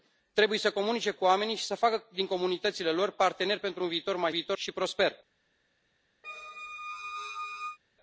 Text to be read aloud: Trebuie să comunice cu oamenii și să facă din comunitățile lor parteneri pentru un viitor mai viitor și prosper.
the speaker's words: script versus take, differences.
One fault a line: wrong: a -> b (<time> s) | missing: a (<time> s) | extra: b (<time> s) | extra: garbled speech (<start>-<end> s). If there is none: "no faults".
no faults